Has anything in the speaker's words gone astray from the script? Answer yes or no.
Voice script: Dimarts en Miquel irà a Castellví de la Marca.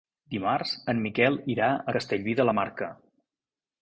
no